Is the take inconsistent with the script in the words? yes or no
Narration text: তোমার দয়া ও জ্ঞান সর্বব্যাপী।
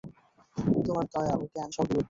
no